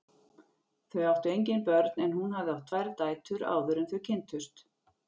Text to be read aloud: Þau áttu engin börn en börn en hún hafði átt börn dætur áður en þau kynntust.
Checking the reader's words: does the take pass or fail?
fail